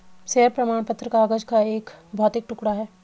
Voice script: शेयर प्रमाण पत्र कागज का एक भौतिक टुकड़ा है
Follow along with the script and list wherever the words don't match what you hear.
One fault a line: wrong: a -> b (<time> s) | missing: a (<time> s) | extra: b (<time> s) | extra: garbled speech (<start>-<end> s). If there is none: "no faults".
no faults